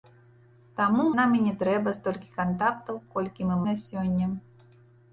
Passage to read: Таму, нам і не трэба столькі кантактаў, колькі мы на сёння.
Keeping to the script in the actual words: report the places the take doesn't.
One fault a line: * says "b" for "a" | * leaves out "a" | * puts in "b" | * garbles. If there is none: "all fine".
all fine